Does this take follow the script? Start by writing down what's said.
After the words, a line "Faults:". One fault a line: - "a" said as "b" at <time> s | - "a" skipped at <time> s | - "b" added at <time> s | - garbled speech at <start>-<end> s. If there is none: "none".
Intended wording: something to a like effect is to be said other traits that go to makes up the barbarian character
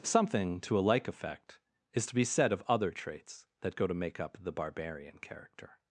something to a like effect is to be said of other traits that go to make up the barbarian character
Faults:
- "of" added at 2.5 s
- "makes" said as "make" at 3.9 s